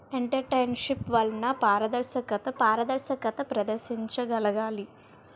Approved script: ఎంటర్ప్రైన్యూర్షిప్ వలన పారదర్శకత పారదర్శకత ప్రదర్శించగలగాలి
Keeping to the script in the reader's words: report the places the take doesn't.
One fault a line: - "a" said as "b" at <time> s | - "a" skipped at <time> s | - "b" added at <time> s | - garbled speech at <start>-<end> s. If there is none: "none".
none